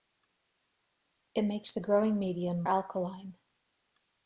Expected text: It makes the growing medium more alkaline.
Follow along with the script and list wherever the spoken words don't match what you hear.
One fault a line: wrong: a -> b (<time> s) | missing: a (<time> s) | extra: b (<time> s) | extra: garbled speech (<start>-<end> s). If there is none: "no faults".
missing: more (2.6 s)